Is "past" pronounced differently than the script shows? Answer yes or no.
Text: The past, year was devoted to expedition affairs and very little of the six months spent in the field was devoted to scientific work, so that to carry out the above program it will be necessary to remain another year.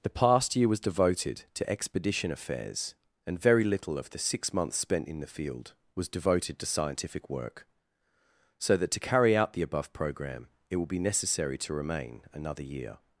no